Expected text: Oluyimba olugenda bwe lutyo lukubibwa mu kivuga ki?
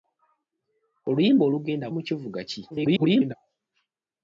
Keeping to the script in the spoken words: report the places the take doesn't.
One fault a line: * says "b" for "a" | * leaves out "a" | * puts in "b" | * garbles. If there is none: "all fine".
* leaves out "bwe lutyo lukubibwa"
* garbles